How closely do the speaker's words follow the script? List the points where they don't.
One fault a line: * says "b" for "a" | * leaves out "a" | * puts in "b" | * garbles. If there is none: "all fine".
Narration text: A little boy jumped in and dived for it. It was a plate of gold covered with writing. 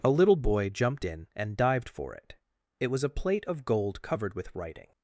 all fine